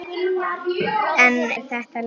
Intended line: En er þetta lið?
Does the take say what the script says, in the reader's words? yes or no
yes